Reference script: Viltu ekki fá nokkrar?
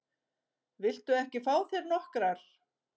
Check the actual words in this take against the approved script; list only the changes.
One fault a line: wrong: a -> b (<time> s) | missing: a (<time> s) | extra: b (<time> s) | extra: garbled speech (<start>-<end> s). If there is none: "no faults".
extra: þér (1.8 s)